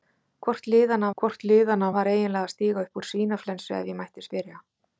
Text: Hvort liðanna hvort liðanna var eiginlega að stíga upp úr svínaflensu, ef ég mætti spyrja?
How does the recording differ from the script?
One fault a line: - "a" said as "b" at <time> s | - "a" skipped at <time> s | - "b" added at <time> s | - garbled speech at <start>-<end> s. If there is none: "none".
none